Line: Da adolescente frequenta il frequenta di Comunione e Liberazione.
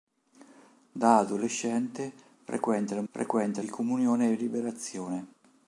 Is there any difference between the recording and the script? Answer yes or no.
no